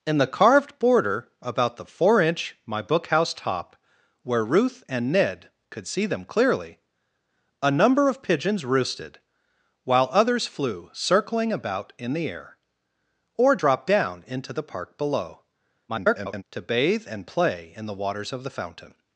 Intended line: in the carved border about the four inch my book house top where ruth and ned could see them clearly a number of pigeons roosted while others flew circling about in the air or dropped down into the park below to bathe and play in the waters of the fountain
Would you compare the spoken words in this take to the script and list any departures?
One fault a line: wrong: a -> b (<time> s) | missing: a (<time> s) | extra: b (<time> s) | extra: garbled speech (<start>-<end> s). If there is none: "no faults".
extra: garbled speech (15.9-16.4 s)